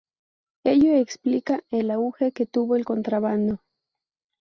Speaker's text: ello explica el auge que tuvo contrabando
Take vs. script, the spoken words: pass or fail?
fail